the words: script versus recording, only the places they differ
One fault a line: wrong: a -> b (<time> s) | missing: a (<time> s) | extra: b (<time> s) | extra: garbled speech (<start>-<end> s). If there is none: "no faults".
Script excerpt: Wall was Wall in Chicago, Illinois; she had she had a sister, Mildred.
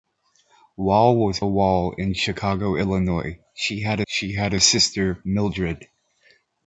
no faults